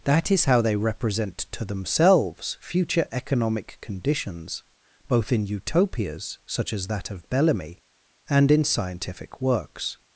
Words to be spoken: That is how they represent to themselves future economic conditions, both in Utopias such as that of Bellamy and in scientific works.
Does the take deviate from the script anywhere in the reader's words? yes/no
no